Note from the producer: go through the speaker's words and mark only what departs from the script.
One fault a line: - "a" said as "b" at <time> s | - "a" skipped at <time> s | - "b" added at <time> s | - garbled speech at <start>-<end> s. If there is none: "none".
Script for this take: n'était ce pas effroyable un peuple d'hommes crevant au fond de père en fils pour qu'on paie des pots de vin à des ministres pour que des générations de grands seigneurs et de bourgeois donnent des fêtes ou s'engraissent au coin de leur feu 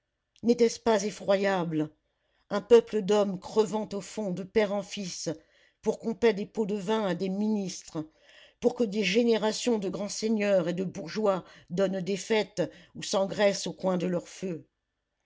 none